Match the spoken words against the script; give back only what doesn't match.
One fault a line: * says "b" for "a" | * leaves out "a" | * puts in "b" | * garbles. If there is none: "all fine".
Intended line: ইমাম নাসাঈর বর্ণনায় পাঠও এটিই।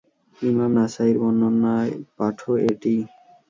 all fine